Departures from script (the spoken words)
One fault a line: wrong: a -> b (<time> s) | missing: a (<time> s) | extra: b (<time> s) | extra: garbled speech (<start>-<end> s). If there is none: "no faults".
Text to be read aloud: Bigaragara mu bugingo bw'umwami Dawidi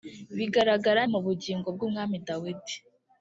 no faults